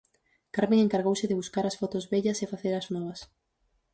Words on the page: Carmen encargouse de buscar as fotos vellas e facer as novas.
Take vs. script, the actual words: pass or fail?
pass